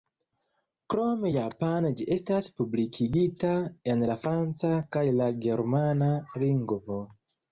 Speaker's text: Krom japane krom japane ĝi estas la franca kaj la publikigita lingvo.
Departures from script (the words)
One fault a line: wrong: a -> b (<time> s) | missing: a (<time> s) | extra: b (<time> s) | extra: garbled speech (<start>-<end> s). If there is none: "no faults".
wrong: krom japane ĝi estas -> ĝi estas publikigita en (2.0 s)
wrong: publikigita -> germana (5.5 s)